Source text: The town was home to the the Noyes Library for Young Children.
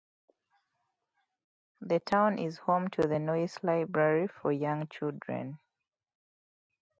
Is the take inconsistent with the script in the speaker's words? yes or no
yes